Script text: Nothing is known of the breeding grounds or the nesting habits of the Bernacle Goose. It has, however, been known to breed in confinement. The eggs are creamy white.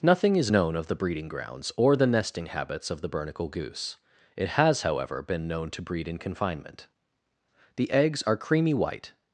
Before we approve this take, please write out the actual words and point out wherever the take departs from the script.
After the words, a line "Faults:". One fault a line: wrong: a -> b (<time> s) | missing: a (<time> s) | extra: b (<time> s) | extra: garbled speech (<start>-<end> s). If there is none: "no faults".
Nothing is known of the breeding grounds or the nesting habits of the Bernacle Goose. It has, however, been known to breed in confinement. The eggs are creamy white.
Faults:
no faults